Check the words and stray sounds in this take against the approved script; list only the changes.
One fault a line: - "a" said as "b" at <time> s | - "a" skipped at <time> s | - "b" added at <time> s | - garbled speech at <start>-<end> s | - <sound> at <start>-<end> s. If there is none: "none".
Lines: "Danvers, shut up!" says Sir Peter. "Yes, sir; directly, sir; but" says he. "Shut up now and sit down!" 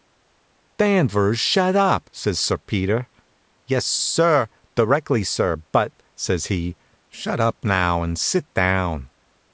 none